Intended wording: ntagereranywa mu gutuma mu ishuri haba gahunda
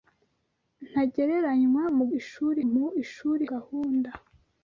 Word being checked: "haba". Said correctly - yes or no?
no